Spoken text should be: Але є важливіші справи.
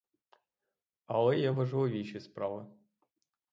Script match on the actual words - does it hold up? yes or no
yes